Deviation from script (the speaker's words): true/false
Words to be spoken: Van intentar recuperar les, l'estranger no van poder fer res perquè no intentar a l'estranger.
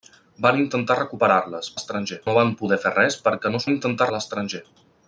false